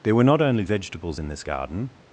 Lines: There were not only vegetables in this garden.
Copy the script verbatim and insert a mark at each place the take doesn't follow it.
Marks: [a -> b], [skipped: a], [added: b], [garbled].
There were not only vegetables in this garden.